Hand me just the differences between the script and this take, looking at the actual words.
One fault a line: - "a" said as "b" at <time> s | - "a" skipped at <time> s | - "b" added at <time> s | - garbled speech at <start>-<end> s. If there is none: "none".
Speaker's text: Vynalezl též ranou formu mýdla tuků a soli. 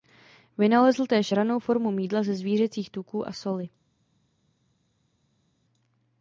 - "ze zvířecích" added at 2.2 s